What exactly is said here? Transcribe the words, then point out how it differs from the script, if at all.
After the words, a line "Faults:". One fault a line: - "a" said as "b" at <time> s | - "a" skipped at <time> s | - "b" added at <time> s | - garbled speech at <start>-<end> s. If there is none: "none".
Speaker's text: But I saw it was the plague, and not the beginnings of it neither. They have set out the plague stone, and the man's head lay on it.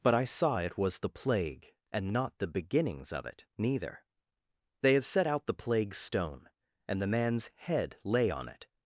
But I saw it was the plague, and not the beginnings of it neither. They have set out the plague stone, and the man's head lay on it.
Faults:
none